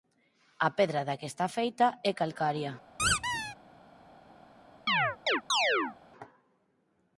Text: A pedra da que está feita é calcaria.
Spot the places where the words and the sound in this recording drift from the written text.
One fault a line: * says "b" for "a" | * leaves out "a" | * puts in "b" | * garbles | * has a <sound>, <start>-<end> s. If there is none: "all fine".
* has a squeak, 3.0-3.6 s
* has a chirp, 4.9-6.0 s